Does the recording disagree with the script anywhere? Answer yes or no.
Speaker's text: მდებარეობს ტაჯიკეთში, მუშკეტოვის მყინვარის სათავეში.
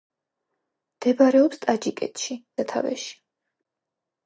yes